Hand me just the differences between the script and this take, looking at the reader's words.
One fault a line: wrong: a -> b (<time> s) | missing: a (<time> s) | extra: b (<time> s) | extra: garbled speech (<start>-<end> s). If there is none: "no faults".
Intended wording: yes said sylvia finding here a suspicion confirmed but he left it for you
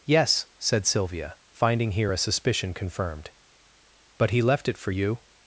no faults